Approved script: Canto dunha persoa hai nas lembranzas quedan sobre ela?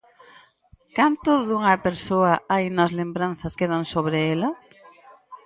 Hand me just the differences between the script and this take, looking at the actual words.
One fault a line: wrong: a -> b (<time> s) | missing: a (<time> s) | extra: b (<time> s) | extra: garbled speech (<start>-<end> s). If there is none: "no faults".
no faults